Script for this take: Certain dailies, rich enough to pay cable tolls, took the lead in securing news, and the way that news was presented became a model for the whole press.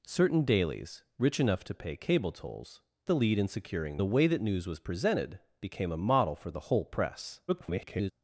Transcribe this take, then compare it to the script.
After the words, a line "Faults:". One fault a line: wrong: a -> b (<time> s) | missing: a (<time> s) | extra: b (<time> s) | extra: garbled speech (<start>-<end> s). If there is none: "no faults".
Certain dailies, rich enough to pay cable tolls, the lead in securing the way that news was presented became a model for the whole press. [garbled]
Faults:
missing: took (2.8 s)
missing: news and (4.0 s)
extra: garbled speech (7.5-8.1 s)